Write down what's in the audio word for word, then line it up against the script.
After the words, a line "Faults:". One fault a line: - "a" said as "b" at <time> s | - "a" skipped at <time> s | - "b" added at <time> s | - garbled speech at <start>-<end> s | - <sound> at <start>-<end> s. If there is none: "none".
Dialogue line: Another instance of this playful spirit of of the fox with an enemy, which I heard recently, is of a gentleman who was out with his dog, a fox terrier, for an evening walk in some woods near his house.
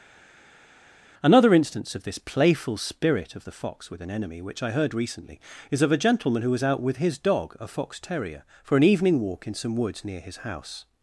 Another instance of this playful spirit of the fox with an enemy, which I heard recently, is of a gentleman who was out with his dog, a fox terrier, for an evening walk in some woods near his house.
Faults:
- "of" skipped at 3.5 s